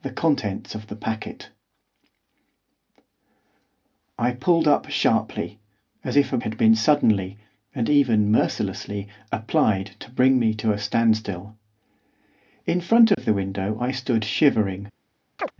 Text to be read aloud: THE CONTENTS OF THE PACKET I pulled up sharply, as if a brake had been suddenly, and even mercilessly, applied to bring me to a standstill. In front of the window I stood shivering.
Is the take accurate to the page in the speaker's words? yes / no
no